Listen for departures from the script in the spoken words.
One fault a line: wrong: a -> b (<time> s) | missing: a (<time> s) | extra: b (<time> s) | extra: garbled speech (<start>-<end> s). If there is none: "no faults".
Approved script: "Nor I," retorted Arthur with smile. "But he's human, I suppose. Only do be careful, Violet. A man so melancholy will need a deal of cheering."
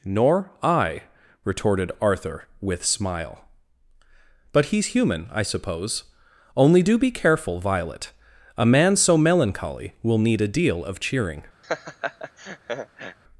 no faults